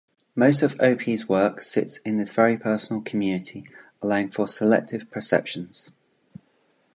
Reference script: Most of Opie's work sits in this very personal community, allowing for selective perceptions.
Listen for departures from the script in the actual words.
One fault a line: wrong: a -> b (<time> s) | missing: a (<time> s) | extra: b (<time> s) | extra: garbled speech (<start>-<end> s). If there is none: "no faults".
no faults